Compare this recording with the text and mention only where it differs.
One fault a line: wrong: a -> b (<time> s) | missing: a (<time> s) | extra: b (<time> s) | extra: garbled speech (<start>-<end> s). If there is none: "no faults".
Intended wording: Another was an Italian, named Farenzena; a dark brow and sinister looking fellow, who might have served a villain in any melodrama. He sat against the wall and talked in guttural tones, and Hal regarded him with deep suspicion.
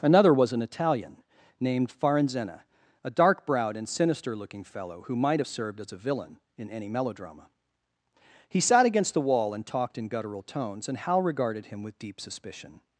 wrong: brow -> browed (3.5 s)
extra: as (5.8 s)